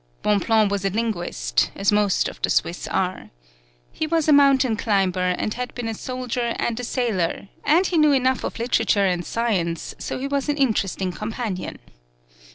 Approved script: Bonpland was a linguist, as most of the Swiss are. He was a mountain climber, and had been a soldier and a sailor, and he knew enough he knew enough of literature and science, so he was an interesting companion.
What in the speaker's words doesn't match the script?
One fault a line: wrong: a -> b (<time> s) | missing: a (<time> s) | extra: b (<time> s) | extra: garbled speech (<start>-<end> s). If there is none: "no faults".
missing: he knew enough (8.4 s)